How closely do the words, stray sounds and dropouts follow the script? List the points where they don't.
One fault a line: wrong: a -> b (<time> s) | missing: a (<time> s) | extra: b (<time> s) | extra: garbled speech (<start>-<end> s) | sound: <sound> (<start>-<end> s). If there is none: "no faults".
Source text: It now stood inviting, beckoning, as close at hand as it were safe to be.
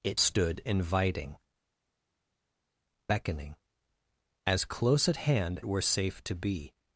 missing: now (0.2 s)
missing: as it (5.6 s)